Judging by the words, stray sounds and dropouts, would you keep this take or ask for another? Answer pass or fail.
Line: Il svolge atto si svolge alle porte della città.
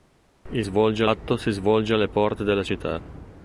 pass